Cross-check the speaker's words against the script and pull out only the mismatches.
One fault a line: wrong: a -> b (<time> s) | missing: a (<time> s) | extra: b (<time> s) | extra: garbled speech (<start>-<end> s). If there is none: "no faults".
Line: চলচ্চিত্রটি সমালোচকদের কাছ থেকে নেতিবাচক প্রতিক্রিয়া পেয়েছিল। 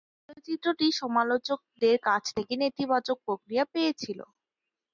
no faults